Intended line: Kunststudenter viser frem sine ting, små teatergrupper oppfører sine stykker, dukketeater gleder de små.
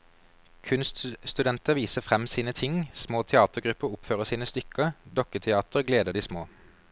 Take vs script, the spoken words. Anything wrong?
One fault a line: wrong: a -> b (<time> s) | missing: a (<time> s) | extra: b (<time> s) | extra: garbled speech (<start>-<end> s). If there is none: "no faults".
no faults